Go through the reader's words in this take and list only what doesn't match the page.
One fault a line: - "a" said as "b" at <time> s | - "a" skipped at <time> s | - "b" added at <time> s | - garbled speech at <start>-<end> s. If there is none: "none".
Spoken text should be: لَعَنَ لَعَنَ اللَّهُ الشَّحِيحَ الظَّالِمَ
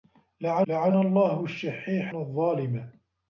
none